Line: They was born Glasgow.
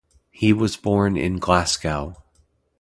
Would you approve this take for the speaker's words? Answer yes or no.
no